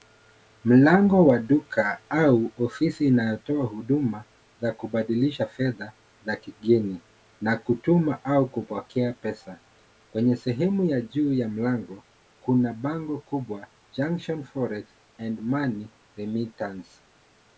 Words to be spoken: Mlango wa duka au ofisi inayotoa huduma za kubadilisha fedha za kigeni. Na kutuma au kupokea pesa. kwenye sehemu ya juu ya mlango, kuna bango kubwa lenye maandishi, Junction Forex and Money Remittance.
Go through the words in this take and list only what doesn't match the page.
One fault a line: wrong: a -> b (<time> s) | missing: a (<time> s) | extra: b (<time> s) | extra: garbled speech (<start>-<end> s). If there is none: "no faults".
missing: lenye maandishi (13.7 s)